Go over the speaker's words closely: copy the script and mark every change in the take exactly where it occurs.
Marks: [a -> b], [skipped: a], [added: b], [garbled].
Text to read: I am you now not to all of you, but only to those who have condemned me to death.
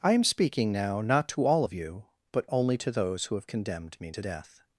I am [you -> speaking] now not to all of you, but only to those who have condemned me to death.